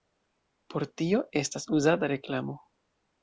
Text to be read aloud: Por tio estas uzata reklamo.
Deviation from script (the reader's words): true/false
false